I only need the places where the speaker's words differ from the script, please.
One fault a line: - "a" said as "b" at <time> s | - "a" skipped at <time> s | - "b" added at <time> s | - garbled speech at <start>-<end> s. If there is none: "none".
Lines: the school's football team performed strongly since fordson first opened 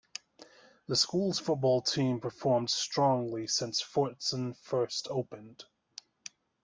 none